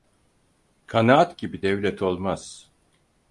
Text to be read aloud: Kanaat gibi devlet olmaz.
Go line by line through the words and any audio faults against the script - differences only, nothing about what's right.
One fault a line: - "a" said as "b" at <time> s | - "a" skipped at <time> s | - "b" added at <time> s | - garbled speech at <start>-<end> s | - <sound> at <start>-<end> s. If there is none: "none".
none